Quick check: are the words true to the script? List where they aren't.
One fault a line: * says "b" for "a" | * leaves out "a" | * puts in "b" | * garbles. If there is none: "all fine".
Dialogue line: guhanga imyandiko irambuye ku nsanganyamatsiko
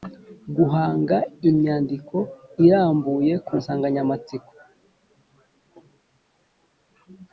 all fine